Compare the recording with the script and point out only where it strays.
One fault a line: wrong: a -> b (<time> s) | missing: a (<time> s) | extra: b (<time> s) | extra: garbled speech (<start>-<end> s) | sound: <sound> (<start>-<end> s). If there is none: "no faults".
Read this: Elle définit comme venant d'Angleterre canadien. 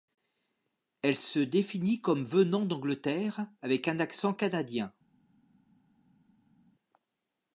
extra: se (1.1 s)
extra: avec un accent (3.6 s)